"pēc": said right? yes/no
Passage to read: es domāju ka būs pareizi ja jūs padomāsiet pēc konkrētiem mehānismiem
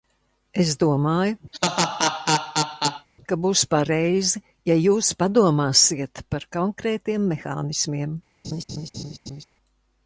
no